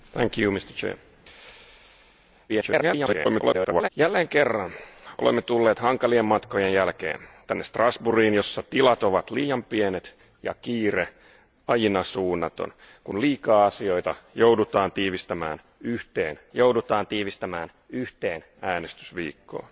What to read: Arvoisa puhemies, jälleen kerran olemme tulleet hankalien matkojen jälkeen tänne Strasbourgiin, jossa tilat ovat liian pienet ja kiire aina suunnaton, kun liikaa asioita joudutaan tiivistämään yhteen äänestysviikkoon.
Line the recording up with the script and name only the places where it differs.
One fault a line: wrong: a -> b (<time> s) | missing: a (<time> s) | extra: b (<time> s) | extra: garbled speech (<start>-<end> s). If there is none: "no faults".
extra: garbled speech (2.5-3.9 s)
extra: joudutaan tiivistämään yhteen (16.5 s)